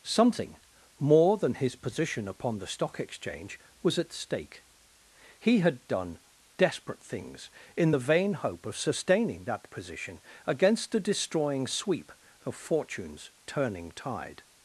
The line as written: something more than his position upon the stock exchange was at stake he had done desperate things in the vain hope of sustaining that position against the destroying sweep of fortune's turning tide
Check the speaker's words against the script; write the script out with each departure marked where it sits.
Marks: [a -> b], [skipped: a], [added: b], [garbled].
something more than his position upon the stock exchange was at stake he had done desperate things in the vain hope of sustaining that position against the destroying sweep of fortune's turning tide